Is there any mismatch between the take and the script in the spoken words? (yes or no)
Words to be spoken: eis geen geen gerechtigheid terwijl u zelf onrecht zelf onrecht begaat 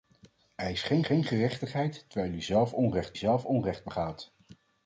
no